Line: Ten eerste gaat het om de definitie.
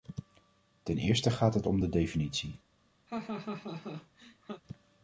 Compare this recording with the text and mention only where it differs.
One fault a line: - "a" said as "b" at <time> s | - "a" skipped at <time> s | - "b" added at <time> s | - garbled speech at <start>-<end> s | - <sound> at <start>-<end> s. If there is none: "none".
- laugh at 3.1-4.6 s